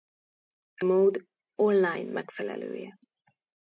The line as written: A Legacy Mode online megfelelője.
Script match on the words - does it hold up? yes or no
no